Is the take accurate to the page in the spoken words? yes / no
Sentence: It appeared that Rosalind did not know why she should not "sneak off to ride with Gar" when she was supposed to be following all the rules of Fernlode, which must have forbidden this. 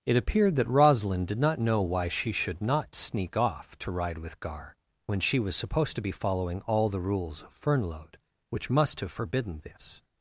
yes